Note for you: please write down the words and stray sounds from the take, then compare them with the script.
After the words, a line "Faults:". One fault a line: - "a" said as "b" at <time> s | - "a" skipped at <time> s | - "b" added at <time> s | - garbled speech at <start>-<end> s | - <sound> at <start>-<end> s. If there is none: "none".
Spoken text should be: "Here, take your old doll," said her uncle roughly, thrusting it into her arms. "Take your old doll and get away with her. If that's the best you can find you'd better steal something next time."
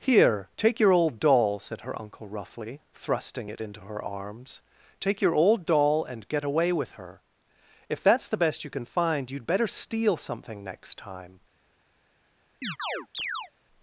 "Here, take your old doll," said her uncle roughly, thrusting it into her arms. "Take your old doll and get away with her. If that's the best you can find you'd better steal something next time."
Faults:
- chirp at 12.6-13.5 s